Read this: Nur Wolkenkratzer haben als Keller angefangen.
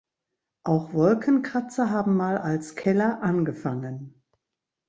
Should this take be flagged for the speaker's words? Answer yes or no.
yes